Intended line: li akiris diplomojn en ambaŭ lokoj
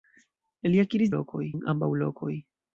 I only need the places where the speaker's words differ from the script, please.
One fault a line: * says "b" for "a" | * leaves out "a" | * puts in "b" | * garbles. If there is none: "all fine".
* says "lokoj" for "diplomojn"